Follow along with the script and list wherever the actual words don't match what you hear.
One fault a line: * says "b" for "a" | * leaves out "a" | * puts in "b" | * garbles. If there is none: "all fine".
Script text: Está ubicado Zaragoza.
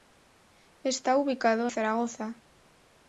all fine